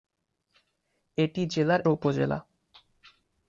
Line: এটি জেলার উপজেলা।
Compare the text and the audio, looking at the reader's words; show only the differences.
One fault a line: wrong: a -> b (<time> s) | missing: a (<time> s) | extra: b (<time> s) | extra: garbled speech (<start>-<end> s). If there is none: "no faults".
no faults